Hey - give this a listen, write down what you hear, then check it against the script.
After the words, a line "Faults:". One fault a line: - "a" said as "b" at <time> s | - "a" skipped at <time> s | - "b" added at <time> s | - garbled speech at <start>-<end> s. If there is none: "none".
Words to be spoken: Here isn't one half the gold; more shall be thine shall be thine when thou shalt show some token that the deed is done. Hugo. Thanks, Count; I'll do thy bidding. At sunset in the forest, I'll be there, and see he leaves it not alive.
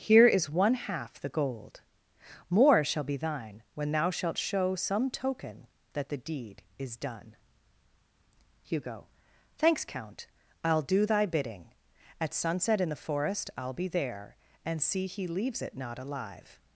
Here is one half the gold; more shall be thine when thou shalt show some token that the deed is done. Hugo. Thanks, Count; I'll do thy bidding. At sunset in the forest, I'll be there, and see he leaves it not alive.
Faults:
- "isn't" said as "is" at 0.2 s
- "shall be thine" skipped at 3.6 s